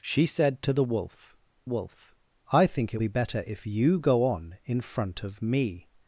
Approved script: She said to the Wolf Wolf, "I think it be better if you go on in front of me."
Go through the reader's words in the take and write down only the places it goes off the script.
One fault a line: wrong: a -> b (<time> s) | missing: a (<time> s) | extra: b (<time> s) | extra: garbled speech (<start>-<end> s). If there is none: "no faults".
no faults